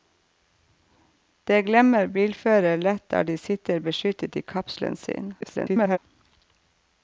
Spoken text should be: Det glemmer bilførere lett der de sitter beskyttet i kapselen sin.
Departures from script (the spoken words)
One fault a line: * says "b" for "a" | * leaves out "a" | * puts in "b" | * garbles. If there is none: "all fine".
* garbles